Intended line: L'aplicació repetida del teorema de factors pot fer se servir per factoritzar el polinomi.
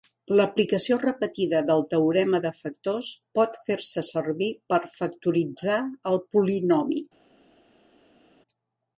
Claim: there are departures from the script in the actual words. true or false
false